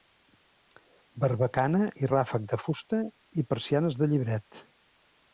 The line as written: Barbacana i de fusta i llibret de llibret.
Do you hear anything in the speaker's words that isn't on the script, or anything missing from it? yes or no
yes